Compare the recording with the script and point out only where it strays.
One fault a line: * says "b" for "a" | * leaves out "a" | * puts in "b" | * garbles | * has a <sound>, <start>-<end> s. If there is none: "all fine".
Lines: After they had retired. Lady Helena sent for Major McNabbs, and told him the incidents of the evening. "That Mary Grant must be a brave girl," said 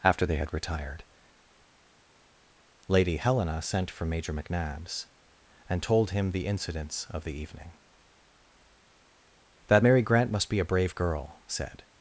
all fine